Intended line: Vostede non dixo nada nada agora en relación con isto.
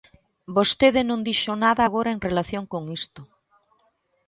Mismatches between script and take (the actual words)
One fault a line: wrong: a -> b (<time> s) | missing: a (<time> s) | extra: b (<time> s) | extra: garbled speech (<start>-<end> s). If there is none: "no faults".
missing: nada (1.8 s)